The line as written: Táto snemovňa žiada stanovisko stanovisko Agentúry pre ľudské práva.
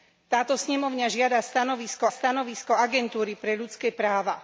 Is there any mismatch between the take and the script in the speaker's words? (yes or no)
no